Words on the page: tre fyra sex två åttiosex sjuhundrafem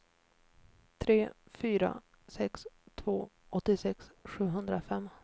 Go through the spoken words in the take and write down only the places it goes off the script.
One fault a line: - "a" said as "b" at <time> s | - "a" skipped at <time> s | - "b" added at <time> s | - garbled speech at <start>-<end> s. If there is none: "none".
none